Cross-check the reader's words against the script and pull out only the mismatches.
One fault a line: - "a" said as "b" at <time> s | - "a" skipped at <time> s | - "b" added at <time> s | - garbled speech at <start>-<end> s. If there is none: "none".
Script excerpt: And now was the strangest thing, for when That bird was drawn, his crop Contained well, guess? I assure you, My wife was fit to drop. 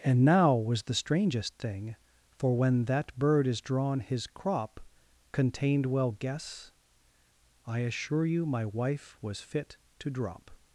- "was" said as "is" at 3.5 s